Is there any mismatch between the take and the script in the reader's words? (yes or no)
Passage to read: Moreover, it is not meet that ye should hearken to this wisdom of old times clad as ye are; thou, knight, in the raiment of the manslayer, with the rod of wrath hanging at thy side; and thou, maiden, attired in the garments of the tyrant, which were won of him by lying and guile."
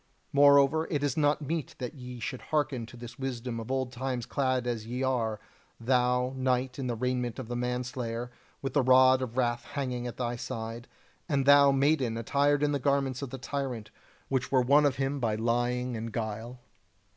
no